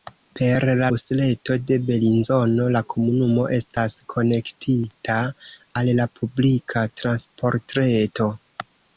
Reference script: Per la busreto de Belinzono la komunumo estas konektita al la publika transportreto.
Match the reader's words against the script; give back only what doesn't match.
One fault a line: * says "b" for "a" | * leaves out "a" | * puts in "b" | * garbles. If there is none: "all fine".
all fine